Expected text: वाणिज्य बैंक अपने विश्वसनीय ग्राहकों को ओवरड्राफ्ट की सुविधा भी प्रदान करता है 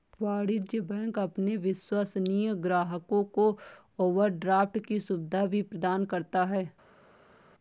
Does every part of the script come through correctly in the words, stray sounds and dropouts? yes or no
yes